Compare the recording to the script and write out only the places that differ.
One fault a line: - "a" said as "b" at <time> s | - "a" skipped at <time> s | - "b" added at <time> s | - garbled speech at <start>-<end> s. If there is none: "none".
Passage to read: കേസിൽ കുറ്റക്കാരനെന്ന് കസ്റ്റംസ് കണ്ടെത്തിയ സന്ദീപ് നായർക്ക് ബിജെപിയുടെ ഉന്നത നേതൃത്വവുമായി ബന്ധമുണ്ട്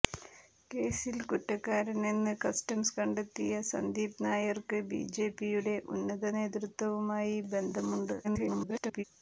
- garbled speech at 8.2-9.0 s